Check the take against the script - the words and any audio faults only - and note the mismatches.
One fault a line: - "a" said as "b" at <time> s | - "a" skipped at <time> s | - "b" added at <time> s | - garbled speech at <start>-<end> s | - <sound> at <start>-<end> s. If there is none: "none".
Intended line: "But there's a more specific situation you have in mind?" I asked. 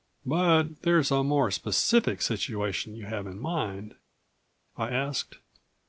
none